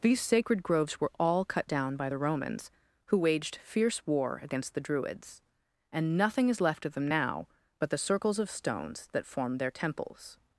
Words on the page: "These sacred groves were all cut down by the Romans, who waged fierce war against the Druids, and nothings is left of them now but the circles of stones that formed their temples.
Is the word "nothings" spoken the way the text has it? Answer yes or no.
no